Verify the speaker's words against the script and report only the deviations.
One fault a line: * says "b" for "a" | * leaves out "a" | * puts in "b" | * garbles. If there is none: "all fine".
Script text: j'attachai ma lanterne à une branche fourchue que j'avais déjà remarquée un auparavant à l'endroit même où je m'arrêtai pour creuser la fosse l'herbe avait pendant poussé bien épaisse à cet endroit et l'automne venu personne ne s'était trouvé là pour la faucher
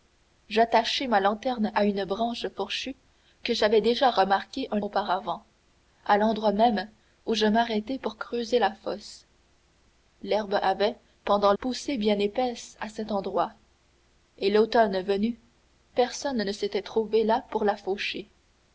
all fine